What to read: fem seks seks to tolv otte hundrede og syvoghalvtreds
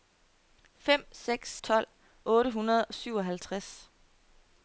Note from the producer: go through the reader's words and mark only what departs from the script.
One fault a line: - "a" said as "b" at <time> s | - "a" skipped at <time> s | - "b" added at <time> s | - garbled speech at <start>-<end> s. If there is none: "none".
- "seks to" skipped at 1.5 s